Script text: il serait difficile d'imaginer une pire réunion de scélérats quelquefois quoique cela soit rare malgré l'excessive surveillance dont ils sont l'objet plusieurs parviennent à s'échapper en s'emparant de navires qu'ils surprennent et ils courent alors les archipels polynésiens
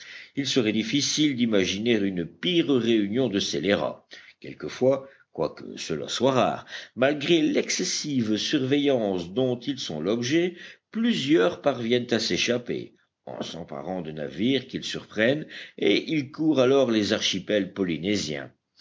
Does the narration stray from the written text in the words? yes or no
no